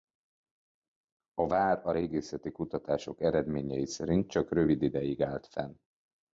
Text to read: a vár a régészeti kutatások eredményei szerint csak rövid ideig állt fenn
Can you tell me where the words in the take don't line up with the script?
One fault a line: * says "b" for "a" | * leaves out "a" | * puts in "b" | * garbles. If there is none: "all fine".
all fine